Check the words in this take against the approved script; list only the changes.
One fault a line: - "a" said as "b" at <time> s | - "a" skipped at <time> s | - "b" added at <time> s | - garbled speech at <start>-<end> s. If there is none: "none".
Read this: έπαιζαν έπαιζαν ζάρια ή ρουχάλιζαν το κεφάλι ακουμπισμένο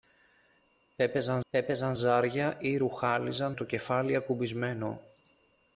none